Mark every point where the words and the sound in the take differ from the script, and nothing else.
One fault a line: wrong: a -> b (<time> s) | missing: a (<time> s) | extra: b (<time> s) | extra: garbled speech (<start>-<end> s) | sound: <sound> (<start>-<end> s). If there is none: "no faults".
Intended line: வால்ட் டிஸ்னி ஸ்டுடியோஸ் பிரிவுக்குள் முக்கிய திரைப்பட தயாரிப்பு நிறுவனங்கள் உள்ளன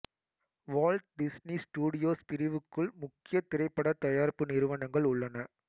no faults